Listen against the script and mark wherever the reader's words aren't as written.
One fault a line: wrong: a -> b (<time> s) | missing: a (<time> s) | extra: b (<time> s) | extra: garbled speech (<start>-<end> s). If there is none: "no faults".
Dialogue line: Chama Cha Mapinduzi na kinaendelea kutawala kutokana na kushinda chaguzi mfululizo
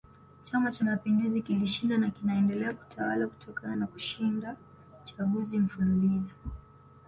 extra: kilishinda (1.4 s)